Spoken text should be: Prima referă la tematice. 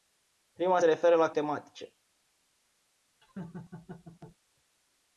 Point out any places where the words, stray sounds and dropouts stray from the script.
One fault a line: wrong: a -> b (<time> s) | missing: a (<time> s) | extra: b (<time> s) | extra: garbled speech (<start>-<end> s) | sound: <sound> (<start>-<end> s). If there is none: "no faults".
sound: laugh (3.2-4.4 s)